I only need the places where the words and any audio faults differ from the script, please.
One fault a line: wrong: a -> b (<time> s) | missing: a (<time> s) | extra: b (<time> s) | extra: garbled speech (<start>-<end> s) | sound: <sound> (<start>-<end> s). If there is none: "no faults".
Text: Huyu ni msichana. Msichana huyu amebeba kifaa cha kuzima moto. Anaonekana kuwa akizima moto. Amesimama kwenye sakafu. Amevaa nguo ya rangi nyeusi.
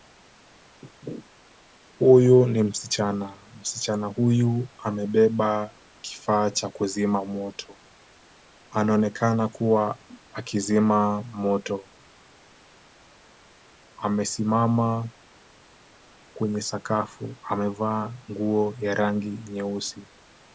no faults